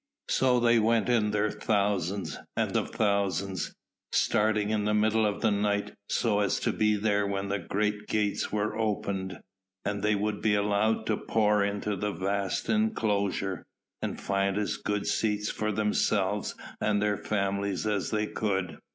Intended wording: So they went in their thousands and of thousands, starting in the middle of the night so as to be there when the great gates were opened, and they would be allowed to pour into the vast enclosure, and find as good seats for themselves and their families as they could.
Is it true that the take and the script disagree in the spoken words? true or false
false